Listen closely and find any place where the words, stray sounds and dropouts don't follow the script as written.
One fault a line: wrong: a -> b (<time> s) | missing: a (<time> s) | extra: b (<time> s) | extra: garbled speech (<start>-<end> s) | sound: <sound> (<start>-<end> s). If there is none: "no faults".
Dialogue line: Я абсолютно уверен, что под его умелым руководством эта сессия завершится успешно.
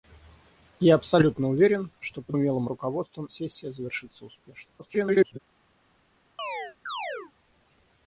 missing: его (2.4 s)
missing: эта (3.3 s)
extra: garbled speech (4.8-5.4 s)
sound: chirp (6.4-7.3 s)